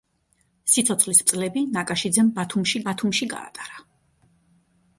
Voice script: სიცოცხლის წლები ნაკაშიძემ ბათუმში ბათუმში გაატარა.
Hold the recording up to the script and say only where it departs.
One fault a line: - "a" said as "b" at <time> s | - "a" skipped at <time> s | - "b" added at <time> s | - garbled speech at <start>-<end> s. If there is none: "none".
none